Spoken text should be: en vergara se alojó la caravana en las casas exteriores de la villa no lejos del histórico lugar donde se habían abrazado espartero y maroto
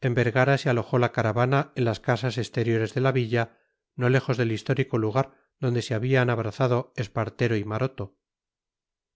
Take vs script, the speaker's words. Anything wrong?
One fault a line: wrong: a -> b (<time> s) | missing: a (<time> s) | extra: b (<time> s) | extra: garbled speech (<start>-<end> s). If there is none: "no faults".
no faults